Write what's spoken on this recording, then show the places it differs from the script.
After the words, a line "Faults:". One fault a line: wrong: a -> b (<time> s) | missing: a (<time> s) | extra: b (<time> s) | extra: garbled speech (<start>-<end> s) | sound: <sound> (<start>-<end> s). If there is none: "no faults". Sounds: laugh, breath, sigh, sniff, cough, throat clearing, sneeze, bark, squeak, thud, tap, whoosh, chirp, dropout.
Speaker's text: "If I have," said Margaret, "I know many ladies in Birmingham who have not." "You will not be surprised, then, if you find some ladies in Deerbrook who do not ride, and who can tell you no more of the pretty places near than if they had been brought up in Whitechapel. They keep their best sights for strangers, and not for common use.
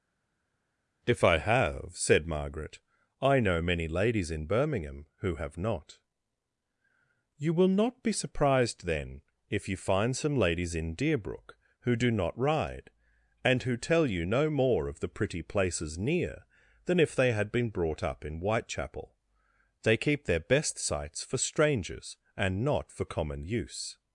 "If I have," said Margaret, "I know many ladies in Birmingham who have not." "You will not be surprised, then, if you find some ladies in Deerbrook who do not ride, and who tell you no more of the pretty places near than if they had been brought up in Whitechapel. They keep their best sights for strangers, and not for common use.
Faults:
missing: can (13.7 s)